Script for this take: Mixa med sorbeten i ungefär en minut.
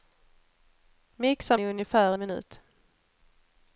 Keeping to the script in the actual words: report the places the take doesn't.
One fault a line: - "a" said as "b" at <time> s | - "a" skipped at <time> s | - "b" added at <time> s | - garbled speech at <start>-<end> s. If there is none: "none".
- "med sorbeten" skipped at 1.6 s
- "en" skipped at 2.1 s